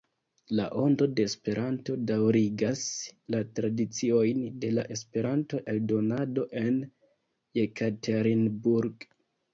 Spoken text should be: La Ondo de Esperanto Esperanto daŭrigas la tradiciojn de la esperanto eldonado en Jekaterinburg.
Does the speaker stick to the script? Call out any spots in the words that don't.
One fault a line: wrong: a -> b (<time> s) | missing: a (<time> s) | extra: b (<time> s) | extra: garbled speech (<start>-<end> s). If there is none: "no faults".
missing: Esperanto (2.0 s)